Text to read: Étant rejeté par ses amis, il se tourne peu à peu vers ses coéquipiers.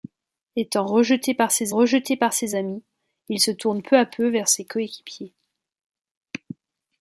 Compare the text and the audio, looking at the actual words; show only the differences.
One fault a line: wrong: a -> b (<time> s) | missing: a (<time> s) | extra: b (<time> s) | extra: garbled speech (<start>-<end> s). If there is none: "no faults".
extra: rejeté par ses (1.7 s)